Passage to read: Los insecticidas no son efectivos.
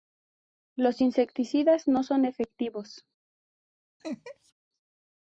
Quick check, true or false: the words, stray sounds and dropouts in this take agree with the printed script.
false